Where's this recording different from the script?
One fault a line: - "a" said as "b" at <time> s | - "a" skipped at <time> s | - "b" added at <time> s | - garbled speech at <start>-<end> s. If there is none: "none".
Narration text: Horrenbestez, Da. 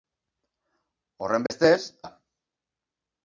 none